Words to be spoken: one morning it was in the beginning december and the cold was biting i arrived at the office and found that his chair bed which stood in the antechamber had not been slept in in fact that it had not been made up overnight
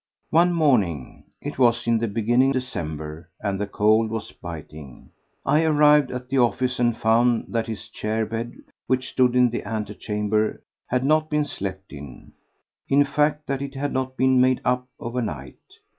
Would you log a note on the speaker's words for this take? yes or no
no